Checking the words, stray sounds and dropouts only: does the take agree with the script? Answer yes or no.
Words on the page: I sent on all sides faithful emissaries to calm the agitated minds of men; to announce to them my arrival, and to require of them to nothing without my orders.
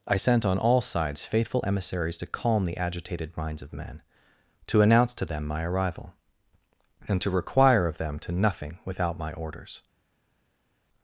yes